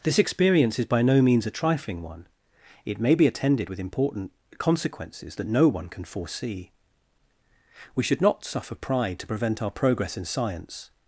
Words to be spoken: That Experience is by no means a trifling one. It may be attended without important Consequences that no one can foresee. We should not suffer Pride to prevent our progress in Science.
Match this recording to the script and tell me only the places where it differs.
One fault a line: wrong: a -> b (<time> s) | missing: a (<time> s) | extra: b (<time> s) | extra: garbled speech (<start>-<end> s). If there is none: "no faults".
wrong: That -> This (0.0 s)
wrong: without -> with (3.7 s)